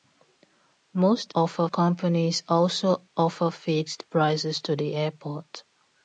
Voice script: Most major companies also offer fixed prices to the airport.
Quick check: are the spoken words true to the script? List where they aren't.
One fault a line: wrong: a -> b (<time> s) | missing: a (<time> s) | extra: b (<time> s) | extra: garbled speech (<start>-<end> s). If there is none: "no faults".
wrong: major -> offer (1.3 s)